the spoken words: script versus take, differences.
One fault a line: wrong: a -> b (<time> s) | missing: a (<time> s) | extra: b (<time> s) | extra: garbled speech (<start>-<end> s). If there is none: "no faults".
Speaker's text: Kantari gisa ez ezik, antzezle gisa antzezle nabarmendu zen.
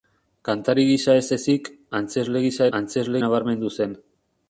no faults